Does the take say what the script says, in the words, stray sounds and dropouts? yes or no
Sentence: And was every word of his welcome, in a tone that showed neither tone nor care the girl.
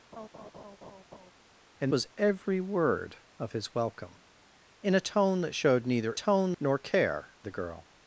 no